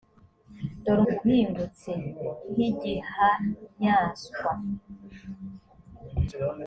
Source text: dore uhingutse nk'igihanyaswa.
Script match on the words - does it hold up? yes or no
yes